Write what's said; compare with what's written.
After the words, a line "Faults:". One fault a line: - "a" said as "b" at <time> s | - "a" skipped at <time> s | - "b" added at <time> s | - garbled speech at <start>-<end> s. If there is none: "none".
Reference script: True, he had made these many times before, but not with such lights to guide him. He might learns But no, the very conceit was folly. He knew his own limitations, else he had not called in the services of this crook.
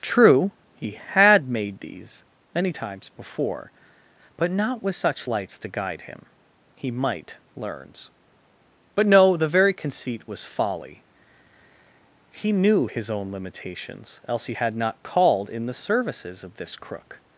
True, he had made these many times before, but not with such lights to guide him. He might learns But no, the very conceit was folly. He knew his own limitations, else he had not called in the services of this crook.
Faults:
none